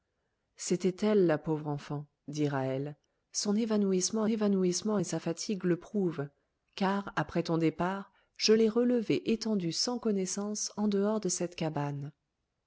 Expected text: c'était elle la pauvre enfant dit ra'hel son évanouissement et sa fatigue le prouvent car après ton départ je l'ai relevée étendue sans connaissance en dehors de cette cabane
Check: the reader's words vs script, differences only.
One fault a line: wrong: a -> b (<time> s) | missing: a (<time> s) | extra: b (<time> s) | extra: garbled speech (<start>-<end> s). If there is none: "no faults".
extra: évanouissement (4.3 s)